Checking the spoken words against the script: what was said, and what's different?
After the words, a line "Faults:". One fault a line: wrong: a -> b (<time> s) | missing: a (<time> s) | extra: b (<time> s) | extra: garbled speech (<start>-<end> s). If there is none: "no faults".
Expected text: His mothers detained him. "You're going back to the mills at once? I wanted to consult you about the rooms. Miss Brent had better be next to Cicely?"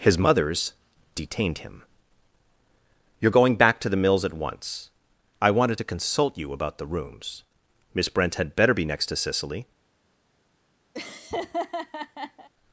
His mothers detained him. "You're going back to the mills at once? I wanted to consult you about the rooms. Miss Brent had better be next to Cicely?"
Faults:
no faults